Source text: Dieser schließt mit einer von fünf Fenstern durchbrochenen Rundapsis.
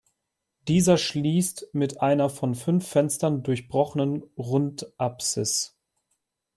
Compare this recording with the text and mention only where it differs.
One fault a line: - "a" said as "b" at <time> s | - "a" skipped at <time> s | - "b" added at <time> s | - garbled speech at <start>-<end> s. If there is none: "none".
none